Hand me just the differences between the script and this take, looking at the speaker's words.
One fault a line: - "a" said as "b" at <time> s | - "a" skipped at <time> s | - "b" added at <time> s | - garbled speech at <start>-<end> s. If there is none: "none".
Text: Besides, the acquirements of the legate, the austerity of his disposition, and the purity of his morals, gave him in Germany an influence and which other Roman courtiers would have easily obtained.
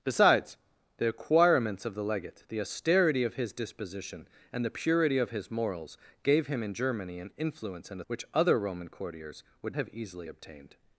none